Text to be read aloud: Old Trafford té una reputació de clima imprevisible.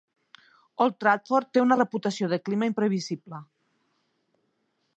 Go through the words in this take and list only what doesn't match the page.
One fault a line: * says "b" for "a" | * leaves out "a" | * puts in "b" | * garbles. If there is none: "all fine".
all fine